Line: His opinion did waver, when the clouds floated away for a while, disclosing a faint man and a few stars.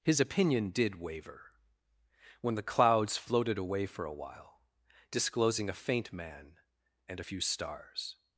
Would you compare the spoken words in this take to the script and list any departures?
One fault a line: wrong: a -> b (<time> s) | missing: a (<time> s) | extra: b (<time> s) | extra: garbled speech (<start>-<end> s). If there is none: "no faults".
no faults